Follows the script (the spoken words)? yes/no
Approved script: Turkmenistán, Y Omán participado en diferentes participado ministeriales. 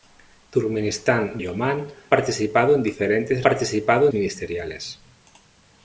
yes